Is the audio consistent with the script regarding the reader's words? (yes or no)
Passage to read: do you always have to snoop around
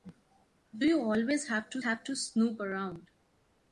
no